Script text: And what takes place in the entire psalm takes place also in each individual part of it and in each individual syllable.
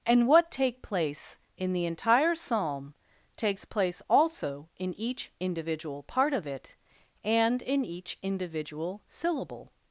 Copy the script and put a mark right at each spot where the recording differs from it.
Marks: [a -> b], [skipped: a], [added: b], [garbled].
And what [takes -> take] place in the entire psalm takes place also in each individual part of it and in each individual syllable.